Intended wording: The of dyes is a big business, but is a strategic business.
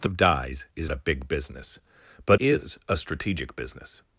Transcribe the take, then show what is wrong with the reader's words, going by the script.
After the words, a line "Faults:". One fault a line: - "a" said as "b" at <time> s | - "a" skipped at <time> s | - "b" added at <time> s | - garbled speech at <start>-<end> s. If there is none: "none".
The of dyes is a big business, but is a strategic business.
Faults:
none